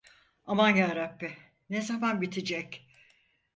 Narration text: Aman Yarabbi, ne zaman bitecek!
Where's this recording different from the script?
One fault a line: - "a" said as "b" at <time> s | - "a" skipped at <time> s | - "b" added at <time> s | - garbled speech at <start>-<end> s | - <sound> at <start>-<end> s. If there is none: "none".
none